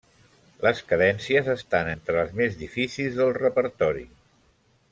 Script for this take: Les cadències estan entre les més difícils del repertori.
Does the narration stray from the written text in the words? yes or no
no